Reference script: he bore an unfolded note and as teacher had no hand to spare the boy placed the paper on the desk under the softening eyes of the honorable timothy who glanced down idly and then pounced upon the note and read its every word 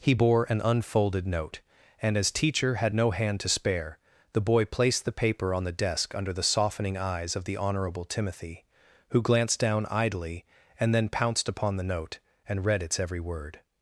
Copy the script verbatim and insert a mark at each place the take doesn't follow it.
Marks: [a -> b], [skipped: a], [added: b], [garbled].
he bore an unfolded note and as teacher had no hand to spare the boy placed the paper on the desk under the softening eyes of the honorable timothy who glanced down idly and then pounced upon the note and read its every word